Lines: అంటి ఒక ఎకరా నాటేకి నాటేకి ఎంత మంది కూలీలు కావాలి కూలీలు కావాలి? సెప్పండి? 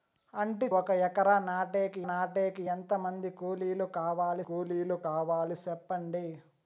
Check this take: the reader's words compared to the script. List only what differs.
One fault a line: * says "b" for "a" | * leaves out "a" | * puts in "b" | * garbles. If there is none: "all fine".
all fine